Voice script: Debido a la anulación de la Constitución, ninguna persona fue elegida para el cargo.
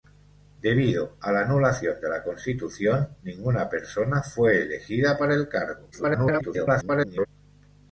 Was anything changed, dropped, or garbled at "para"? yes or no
no